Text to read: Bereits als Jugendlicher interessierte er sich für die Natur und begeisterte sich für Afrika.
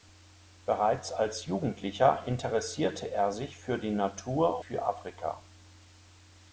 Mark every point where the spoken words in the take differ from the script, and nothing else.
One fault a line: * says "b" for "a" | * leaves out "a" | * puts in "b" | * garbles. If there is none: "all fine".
* leaves out "und begeisterte sich"